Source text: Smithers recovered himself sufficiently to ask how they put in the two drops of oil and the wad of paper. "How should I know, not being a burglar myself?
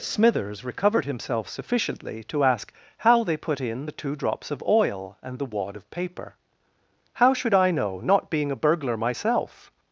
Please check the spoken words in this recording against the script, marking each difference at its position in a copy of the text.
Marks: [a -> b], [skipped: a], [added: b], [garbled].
Smithers recovered himself sufficiently to ask how they put in the two drops of oil and the wad of paper. "How should I know, not being a burglar myself?